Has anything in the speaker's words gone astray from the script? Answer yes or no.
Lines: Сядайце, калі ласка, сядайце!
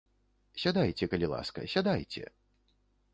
no